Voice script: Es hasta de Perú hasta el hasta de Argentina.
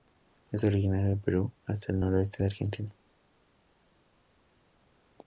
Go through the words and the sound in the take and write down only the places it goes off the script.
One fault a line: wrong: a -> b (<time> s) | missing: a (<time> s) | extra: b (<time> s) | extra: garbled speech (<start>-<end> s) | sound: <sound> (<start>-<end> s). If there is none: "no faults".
wrong: hasta -> originario (0.6 s)
wrong: hasta -> noroeste (2.0 s)